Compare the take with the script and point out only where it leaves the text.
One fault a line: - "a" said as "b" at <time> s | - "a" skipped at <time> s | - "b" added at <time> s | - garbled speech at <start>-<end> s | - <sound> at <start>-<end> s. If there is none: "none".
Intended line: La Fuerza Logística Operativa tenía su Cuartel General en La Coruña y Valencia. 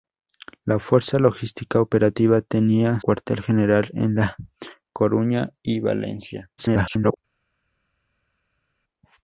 - "su" skipped at 3.0 s
- garbled speech at 6.6-7.2 s